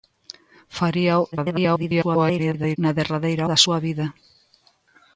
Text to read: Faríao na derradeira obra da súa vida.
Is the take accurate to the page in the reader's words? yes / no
no